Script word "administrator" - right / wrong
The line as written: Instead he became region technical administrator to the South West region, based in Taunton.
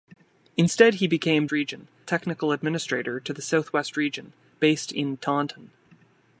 right